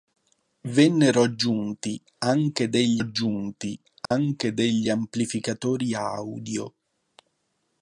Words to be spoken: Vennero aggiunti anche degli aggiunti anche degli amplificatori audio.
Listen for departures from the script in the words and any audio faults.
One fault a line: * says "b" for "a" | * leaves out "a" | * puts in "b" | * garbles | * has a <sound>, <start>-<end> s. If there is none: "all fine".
* has a dropout, 4.1-4.1 s